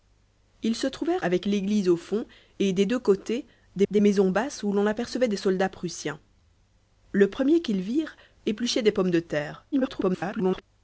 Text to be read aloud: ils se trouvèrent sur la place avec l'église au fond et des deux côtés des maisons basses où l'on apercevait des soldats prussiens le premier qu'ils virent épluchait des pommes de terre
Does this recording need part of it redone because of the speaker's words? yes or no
yes